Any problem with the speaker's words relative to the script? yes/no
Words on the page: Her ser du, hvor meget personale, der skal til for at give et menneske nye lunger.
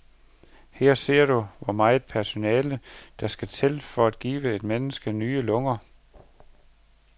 no